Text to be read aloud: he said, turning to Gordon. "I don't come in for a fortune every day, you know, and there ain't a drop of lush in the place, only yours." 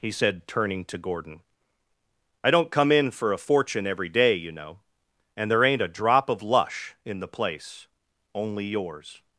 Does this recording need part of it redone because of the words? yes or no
no